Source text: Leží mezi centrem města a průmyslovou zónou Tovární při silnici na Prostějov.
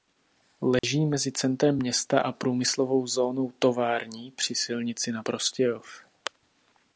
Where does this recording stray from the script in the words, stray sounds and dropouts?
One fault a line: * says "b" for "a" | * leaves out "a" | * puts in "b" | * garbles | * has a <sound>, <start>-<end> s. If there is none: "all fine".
* has a dropout, 0.8-0.8 s